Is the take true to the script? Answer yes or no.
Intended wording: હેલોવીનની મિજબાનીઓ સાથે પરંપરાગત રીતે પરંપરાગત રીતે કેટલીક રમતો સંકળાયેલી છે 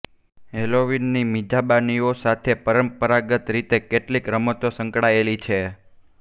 no